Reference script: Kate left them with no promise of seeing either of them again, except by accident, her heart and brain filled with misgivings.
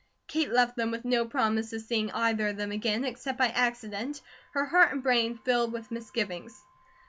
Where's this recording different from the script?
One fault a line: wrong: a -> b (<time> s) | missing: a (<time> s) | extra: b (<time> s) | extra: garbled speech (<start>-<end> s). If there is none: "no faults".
no faults